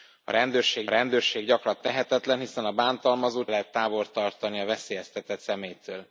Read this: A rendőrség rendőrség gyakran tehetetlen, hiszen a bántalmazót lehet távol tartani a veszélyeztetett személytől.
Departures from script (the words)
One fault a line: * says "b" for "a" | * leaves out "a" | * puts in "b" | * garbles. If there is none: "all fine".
all fine